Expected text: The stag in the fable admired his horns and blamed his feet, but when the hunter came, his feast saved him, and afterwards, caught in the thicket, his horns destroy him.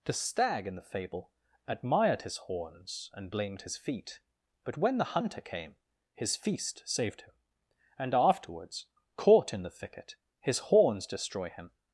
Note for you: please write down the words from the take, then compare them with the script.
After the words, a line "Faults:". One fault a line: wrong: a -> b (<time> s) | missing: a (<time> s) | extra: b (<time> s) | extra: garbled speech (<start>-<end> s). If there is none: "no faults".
The stag in the fable admired his horns and blamed his feet, but when the hunter came, his feast saved him, and afterwards, caught in the thicket, his horns destroy him.
Faults:
no faults